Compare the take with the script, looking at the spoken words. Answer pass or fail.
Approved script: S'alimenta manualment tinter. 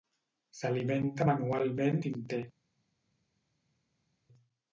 pass